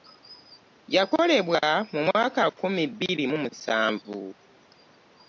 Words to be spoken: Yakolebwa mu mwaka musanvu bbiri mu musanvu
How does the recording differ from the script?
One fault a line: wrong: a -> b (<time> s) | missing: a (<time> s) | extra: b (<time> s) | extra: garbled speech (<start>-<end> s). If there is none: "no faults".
wrong: musanvu -> nkumi (2.5 s)